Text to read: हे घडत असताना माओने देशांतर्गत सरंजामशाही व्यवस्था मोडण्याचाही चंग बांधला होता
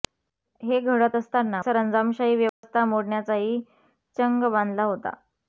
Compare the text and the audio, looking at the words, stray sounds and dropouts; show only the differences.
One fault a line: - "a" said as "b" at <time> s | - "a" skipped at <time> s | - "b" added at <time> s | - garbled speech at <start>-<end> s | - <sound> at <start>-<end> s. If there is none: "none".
- "माओने देशांतर्गत" skipped at 1.6 s
- dropout at 2.5-2.6 s